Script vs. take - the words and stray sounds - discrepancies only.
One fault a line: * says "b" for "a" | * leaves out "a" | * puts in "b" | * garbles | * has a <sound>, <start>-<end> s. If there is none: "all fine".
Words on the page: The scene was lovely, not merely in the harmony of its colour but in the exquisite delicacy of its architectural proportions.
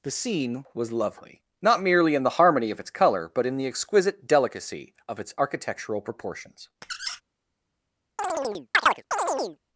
* has a squeak, 6.8-7.2 s
* has a chirp, 8.2-9.6 s